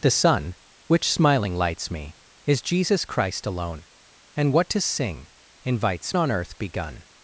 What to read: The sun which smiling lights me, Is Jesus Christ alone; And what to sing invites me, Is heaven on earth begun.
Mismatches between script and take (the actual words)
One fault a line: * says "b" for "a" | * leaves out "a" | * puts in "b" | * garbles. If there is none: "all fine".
* leaves out "me Is heaven"